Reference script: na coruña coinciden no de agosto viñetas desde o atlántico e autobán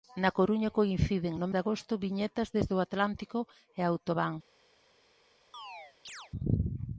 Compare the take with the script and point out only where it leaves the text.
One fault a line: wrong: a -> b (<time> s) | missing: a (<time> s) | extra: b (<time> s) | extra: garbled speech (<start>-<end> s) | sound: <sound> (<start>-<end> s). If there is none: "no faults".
sound: chirp (5.5-6.3 s)